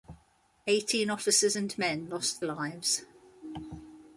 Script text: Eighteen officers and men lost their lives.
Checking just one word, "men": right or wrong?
right